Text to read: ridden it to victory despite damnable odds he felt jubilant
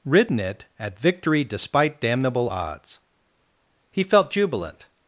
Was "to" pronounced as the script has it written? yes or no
no